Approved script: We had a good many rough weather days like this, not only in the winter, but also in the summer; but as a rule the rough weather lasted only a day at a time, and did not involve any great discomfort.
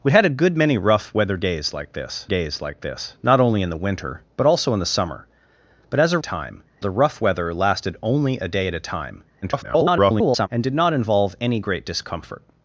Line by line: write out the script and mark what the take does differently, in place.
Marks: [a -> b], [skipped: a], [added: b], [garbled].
We had a good many rough weather days like this, [added: days like this] not only in the winter, but also in the summer; but as a [rule -> time] the rough weather lasted only a day at a time, [garbled] and did not involve any great discomfort.